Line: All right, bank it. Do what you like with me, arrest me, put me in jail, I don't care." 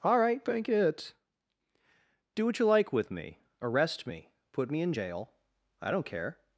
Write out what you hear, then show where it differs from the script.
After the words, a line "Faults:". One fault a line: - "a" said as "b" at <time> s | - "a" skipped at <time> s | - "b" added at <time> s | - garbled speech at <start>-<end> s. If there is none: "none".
All right, bank it. Do what you like with me, arrest me, put me in jail, I don't care."
Faults:
none